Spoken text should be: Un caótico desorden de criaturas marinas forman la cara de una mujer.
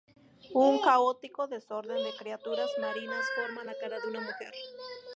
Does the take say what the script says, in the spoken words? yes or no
yes